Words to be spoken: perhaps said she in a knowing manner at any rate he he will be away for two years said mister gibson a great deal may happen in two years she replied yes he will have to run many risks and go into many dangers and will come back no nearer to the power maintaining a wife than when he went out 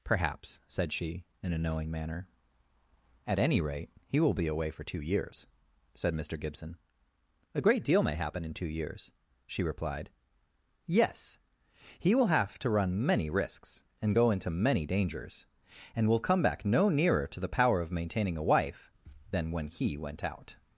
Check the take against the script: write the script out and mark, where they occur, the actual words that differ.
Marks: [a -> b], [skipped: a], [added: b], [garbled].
perhaps said she in a knowing manner at any rate he [skipped: he] will be away for two years said mister gibson a great deal may happen in two years she replied yes he will have to run many risks and go into many dangers and will come back no nearer to the power [added: of] maintaining a wife than when he went out